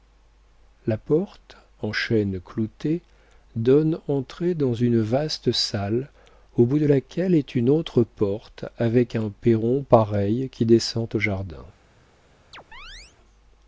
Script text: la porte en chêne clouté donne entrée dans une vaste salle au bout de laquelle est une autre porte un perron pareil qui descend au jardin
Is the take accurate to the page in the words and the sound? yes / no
no